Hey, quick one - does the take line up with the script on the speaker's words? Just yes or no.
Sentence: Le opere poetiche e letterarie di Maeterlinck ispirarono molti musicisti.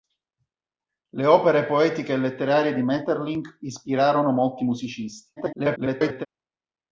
no